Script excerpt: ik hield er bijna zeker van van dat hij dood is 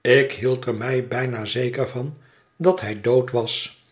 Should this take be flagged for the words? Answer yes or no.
yes